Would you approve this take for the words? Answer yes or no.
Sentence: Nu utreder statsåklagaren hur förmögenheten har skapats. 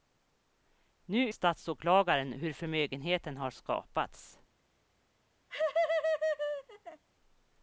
no